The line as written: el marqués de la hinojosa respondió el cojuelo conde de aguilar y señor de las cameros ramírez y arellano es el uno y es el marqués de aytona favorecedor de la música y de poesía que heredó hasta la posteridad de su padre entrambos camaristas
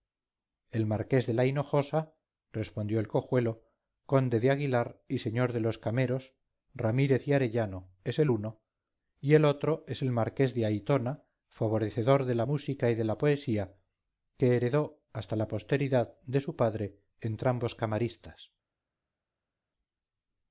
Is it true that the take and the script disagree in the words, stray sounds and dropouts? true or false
true